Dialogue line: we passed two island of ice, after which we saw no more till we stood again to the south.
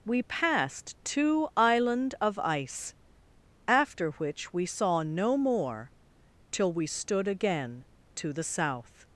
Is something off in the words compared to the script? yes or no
no